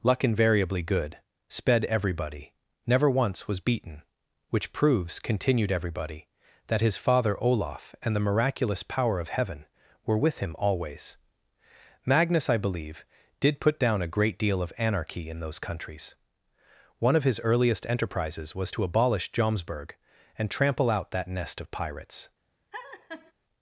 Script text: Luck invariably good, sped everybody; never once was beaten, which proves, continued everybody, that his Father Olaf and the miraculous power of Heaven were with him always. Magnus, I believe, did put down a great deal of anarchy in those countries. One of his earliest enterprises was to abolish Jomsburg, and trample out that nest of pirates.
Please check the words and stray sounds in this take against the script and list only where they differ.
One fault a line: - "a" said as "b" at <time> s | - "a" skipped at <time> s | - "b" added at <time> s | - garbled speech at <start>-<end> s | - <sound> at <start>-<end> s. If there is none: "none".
- laugh at 22.7-23.3 s